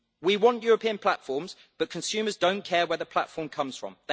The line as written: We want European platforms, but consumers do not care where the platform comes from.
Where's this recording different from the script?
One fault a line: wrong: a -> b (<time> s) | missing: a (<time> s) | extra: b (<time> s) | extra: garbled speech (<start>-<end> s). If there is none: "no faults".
no faults